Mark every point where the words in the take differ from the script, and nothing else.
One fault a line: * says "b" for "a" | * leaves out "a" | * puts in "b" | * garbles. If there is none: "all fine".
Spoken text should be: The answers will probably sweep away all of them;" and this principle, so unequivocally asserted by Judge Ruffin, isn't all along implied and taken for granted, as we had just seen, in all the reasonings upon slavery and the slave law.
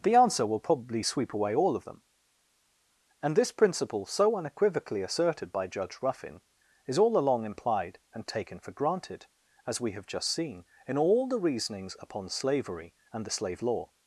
* says "answer" for "answers"
* says "is" for "isn't"
* says "have" for "had"